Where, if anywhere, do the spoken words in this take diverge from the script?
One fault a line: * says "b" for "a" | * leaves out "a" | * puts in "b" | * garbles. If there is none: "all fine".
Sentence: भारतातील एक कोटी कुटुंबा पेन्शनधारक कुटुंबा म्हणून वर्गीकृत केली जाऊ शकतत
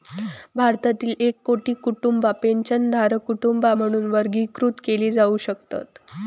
all fine